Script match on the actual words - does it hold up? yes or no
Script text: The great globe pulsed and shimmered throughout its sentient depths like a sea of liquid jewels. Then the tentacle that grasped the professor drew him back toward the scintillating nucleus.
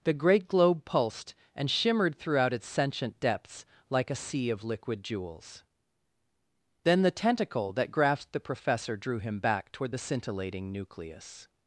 yes